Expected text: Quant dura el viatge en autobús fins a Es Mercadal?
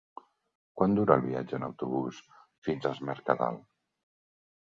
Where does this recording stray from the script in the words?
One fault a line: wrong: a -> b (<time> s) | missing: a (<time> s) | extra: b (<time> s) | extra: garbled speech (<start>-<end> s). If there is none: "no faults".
no faults